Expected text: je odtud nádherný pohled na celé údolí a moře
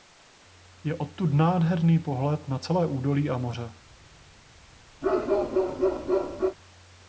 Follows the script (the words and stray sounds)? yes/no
no